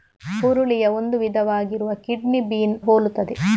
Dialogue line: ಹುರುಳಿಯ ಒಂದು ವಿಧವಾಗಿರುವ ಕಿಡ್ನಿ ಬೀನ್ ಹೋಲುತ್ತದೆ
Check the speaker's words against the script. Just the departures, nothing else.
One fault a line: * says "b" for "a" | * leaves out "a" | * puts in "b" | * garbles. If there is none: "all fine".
all fine